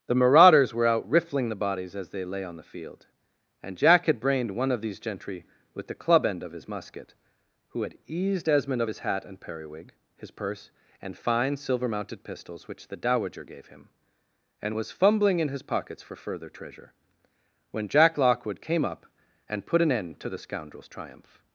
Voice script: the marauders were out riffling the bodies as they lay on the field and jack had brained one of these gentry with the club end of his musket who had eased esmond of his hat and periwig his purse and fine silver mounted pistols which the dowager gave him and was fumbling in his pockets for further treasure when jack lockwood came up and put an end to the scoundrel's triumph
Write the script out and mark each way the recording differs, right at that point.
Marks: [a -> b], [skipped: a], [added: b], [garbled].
the marauders were out riffling the bodies as they lay on the field and jack had brained one of these gentry with the club end of his musket who had eased esmond of his hat and periwig his purse and fine silver mounted pistols which the dowager gave him and was fumbling in his pockets for further treasure when jack lockwood came up and put an end to the scoundrel's triumph